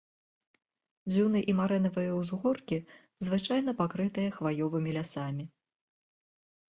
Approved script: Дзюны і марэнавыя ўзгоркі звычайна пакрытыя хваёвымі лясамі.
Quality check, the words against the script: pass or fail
pass